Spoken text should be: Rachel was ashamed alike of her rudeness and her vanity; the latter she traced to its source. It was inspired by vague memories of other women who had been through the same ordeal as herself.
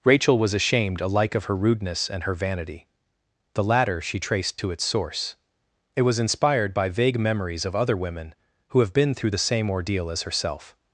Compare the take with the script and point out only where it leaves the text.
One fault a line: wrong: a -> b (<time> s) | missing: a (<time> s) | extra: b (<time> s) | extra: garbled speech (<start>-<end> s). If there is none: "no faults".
wrong: had -> have (8.8 s)